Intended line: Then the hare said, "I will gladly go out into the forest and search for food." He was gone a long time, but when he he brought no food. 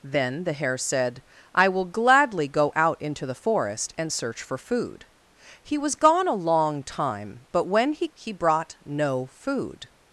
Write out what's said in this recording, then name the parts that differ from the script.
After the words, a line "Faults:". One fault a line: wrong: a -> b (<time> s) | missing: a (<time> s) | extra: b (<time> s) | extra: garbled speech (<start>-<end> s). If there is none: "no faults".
Then the hare said, "I will gladly go out into the forest and search for food." He was gone a long time, but when he he brought no food.
Faults:
no faults